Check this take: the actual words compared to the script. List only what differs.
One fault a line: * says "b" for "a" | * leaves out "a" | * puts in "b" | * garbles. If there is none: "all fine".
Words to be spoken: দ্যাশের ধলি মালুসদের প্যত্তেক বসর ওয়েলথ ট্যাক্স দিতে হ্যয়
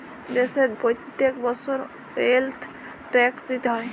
* leaves out "ধলি মালুসদের"